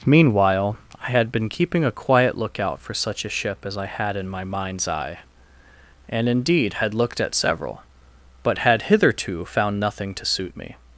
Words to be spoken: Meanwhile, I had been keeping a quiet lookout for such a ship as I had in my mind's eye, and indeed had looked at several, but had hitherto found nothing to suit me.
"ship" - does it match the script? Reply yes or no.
yes